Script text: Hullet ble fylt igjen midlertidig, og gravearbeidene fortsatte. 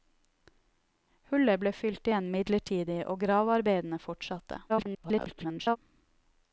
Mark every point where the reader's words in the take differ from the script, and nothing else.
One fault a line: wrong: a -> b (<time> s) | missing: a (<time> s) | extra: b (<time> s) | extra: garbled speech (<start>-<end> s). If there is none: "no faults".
extra: garbled speech (4.7-5.8 s)